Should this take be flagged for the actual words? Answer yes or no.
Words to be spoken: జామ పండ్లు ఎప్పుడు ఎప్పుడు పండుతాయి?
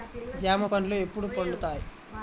yes